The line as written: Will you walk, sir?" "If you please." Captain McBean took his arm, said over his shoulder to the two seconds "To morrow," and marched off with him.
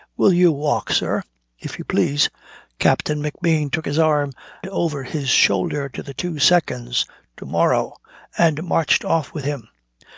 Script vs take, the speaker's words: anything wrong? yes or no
yes